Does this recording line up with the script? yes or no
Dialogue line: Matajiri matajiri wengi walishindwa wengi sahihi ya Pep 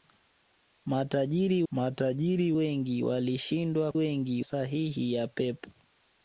yes